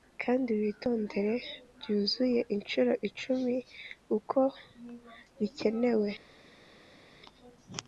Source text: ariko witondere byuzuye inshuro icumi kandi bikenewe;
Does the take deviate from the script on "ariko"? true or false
true